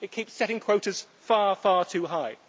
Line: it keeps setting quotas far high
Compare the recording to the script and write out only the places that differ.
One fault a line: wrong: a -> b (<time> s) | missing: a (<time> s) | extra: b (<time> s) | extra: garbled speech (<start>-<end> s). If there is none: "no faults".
extra: far too (1.6 s)